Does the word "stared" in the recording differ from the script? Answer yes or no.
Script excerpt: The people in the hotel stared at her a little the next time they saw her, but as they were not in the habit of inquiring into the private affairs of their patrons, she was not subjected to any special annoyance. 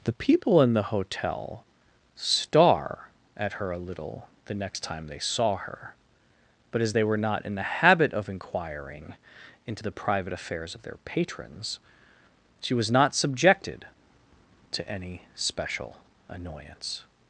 yes